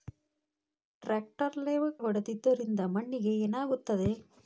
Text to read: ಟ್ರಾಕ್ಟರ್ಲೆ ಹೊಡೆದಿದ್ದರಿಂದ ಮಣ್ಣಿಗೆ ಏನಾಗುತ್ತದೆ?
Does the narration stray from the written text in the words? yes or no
no